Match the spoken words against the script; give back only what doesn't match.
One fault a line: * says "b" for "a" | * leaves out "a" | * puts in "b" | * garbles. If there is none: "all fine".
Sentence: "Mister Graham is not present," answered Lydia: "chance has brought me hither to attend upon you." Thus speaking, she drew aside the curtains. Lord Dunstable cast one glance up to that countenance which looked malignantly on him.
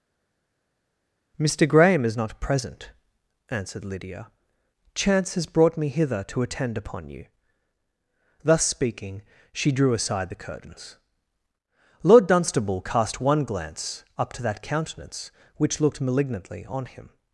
all fine